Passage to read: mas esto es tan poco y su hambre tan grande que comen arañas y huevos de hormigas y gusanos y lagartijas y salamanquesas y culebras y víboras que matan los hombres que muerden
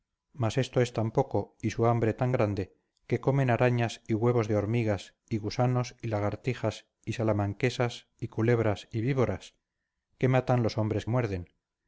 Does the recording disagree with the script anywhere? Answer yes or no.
yes